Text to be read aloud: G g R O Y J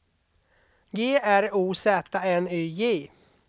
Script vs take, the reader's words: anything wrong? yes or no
yes